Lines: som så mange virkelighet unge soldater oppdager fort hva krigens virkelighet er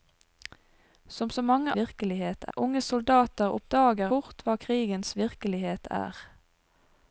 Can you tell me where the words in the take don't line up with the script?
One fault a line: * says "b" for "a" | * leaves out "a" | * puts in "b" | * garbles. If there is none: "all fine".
all fine